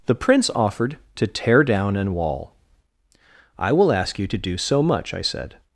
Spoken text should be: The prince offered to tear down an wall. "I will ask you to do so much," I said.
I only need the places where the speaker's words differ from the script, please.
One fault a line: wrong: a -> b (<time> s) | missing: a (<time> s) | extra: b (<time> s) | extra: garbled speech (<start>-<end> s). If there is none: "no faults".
no faults